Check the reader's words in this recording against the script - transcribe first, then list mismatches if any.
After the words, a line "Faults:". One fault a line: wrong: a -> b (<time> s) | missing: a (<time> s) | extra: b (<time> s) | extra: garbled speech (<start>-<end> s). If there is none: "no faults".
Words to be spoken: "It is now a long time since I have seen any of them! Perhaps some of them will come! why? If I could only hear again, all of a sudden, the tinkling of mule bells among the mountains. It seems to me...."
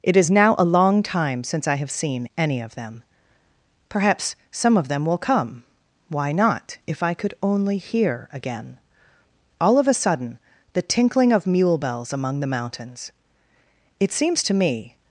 "It is now a long time since I have seen any of them! Perhaps some of them will come! why not? If I could only hear again, all of a sudden, the tinkling of mule bells among the mountains. It seems to me...."
Faults:
extra: not (6.3 s)